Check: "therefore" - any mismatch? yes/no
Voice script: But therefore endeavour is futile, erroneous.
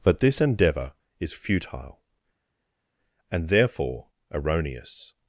yes